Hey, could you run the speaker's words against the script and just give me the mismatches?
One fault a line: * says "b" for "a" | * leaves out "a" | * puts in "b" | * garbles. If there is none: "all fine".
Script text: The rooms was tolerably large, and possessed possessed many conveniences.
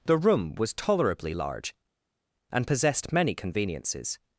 * says "room" for "rooms"
* leaves out "possessed"